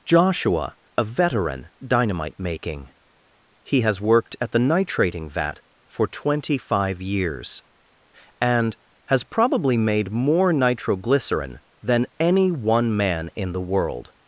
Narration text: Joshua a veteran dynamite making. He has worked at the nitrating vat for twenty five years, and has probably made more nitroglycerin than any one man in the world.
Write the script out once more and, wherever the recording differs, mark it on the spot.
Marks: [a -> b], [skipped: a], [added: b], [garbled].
Joshua a veteran dynamite making. He has worked at the nitrating vat for twenty five years, and has probably made more nitroglycerin than any one man in the world.